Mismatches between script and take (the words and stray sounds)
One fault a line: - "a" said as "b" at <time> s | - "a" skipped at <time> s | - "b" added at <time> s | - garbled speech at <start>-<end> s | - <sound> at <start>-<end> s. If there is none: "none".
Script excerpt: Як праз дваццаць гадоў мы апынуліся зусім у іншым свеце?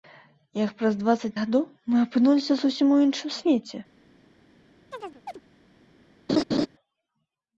- chirp at 4.9-5.4 s
- laugh at 6.3-6.7 s